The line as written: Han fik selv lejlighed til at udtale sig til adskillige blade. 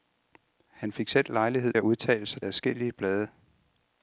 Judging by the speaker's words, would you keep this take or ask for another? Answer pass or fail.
fail